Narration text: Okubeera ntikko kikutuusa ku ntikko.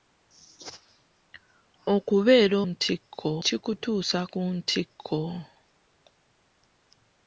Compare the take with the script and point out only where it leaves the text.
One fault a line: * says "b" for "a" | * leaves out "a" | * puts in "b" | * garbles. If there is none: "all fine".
all fine